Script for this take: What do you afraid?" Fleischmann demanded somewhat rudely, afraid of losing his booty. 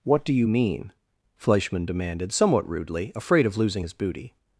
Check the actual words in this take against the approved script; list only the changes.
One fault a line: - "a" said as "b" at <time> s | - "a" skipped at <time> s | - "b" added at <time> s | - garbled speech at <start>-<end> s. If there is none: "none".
- "afraid" said as "mean" at 0.5 s